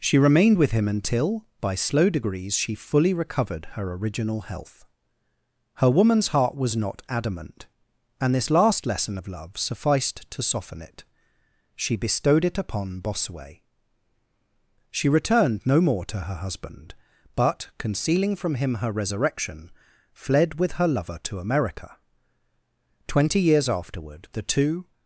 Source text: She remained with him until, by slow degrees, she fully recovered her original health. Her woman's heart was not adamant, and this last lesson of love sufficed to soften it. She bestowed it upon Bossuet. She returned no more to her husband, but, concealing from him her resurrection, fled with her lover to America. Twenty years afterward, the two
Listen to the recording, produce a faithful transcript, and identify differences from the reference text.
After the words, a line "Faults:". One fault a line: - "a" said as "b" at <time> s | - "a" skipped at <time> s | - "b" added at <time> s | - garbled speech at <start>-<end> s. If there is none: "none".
She remained with him until, by slow degrees, she fully recovered her original health. Her woman's heart was not adamant, and this last lesson of love sufficed to soften it. She bestowed it upon Bossuet. She returned no more to her husband, but, concealing from him her resurrection, fled with her lover to America. Twenty years afterward, the two
Faults:
none